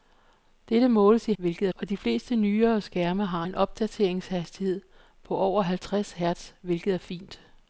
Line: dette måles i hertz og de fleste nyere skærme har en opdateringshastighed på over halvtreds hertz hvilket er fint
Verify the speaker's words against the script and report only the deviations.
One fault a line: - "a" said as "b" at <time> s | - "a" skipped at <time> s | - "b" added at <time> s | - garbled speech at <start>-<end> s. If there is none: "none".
- "hertz" said as "hvilket" at 1.4 s